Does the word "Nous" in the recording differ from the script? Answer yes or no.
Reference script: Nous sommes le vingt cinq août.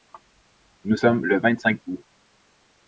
no